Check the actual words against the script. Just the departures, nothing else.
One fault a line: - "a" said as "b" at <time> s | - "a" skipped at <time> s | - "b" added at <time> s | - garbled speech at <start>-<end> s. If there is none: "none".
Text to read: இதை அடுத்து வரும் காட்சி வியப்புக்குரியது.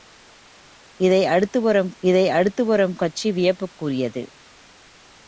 - "இதை அடுத்து வரும்" added at 2.0 s